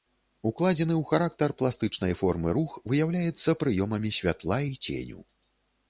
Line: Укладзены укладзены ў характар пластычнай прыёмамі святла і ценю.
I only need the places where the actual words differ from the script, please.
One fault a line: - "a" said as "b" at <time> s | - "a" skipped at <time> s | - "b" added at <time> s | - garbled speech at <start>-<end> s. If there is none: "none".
- "укладзены" skipped at 0.9 s
- "формы рух выяўляецца" added at 2.2 s